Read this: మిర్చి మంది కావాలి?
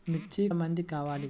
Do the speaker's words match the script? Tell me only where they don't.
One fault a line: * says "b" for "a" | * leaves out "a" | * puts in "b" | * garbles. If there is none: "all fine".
all fine